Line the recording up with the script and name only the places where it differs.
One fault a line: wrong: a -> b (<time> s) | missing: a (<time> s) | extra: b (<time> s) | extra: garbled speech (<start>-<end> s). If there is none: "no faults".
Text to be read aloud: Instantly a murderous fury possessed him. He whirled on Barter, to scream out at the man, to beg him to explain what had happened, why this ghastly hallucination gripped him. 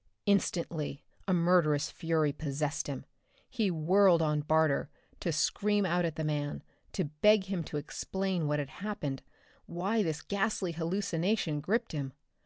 no faults